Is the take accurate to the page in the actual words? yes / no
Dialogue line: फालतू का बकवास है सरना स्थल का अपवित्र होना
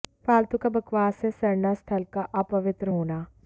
yes